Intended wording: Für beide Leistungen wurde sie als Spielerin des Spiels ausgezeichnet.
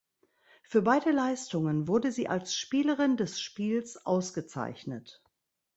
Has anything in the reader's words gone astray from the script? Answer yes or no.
no